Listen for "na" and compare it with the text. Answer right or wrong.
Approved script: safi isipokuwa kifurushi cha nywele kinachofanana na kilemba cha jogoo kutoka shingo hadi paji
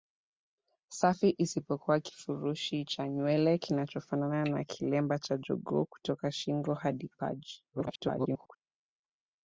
right